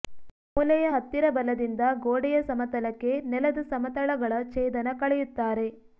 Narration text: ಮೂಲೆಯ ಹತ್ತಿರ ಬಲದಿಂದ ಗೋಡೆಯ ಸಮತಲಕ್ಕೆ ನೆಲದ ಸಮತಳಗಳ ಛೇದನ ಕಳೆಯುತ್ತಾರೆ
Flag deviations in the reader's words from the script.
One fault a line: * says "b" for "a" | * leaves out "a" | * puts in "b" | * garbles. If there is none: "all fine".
all fine